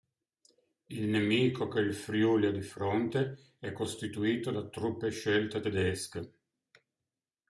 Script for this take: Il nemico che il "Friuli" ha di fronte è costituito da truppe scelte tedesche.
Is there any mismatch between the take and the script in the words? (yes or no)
no